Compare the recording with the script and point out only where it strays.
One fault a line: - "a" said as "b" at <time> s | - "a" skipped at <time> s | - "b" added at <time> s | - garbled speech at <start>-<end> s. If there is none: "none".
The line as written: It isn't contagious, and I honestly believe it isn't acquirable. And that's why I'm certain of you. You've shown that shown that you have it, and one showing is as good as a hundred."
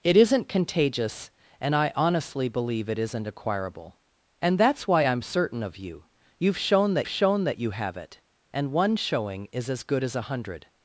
none